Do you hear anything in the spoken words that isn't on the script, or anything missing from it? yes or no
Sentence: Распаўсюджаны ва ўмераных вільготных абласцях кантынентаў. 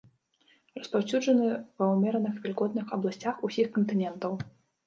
yes